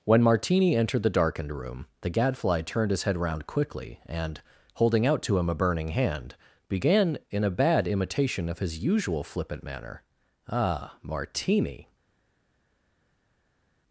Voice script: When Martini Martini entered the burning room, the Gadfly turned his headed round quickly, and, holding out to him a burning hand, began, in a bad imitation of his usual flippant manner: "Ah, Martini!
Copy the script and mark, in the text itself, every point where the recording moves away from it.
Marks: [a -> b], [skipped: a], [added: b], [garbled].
When Martini [skipped: Martini] entered the [burning -> darkened] room, the Gadfly turned his [headed -> head] round quickly, and, holding out to him a burning hand, began, in a bad imitation of his usual flippant manner: "Ah, Martini!